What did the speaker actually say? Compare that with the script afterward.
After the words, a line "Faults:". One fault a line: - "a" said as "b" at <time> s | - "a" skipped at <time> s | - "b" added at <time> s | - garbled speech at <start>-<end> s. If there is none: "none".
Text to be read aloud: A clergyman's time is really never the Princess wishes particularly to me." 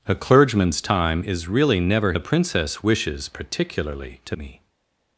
A clergyman's time is really never the Princess wishes particularly to me."
Faults:
none